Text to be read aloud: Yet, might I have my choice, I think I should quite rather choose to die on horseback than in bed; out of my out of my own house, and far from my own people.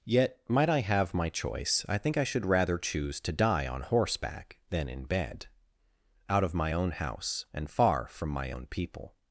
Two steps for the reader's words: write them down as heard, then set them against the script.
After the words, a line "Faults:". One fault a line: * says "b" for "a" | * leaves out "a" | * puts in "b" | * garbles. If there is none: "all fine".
Yet, might I have my choice, I think I should rather choose to die on horseback than in bed; out of my own house, and far from my own people.
Faults:
* leaves out "quite"
* leaves out "out of my"